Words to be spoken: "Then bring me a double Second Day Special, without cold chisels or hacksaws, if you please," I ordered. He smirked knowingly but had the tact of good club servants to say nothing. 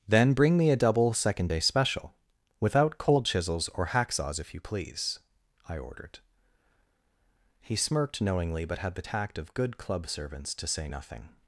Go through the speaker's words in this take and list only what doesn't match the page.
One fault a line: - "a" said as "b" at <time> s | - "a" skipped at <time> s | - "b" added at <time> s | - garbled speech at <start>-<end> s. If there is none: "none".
none